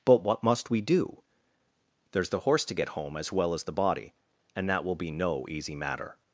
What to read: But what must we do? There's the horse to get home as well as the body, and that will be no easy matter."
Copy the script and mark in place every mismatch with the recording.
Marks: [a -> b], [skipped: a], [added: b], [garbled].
But what must we do? There's the horse to get home as well as the body, and that will be no easy matter."